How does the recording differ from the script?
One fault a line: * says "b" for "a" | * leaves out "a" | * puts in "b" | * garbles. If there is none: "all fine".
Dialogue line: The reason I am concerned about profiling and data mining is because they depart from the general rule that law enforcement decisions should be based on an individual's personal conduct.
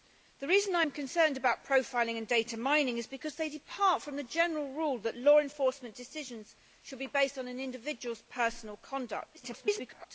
* garbles